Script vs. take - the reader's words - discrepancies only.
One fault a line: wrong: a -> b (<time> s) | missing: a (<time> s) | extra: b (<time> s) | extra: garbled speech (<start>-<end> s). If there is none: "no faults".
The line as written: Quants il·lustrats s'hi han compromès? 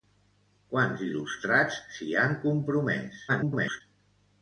extra: garbled speech (3.3-3.8 s)